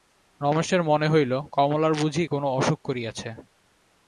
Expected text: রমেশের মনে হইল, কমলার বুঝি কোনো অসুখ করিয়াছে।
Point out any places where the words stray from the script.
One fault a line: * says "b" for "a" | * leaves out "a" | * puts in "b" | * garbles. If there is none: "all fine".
all fine